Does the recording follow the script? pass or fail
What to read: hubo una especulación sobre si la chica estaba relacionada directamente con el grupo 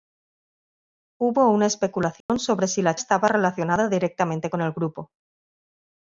fail